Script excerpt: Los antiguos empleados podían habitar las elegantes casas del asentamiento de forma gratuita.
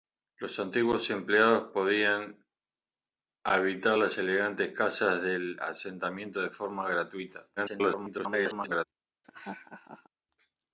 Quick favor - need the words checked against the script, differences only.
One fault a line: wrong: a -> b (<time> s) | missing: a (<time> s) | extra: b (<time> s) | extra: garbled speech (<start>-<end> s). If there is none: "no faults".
extra: garbled speech (7.6-8.8 s)